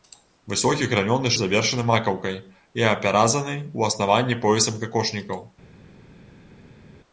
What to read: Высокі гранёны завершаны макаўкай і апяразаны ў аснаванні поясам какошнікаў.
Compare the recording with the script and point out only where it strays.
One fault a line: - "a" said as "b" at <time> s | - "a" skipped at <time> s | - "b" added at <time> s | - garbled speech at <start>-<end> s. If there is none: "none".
none